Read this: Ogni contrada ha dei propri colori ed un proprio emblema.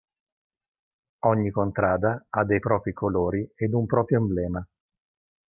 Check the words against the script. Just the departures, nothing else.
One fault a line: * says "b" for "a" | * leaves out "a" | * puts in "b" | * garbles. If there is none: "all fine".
all fine